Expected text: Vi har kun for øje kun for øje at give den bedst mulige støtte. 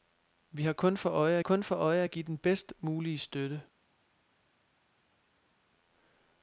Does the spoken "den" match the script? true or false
true